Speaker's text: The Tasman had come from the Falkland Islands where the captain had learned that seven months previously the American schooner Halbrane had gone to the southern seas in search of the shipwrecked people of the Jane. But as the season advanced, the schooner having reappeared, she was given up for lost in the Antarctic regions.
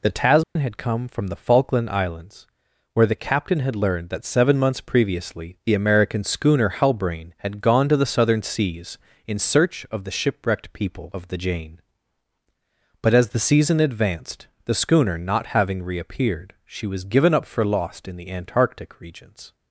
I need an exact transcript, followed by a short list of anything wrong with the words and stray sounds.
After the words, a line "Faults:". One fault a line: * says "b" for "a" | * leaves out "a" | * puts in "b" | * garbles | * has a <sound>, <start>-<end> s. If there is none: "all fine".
The Tasman had come from the Falkland Islands where the captain had learned that seven months previously the American schooner Halbrane had gone to the southern seas in search of the shipwrecked people of the Jane. But as the season advanced, the schooner not having reappeared, she was given up for lost in the Antarctic regions.
Faults:
* has a dropout, 0.4-0.6 s
* puts in "not"